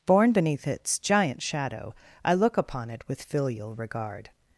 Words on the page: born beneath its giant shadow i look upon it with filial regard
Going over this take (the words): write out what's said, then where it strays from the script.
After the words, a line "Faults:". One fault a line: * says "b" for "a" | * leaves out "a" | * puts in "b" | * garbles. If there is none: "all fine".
born beneath its giant shadow i look upon it with filial regard
Faults:
all fine